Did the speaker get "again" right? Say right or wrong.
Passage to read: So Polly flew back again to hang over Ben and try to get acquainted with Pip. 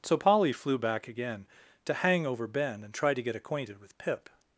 right